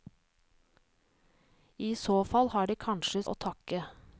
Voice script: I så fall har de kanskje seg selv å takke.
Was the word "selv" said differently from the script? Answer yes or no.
yes